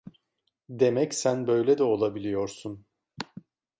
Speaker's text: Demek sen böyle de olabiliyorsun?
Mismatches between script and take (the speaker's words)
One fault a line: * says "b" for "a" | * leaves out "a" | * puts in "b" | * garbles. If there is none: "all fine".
all fine